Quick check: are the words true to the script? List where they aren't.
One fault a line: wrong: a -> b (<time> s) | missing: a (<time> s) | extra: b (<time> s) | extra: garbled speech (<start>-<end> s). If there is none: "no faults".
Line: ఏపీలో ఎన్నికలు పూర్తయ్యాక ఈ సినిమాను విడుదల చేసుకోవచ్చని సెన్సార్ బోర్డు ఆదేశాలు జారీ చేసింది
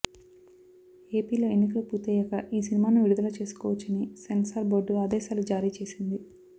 no faults